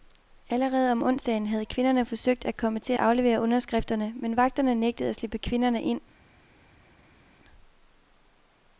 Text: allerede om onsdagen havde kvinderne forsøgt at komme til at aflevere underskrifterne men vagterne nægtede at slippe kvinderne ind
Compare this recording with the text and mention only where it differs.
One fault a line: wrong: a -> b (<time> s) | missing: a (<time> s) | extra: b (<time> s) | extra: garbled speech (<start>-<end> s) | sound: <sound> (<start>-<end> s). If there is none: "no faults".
missing: at (2.9 s)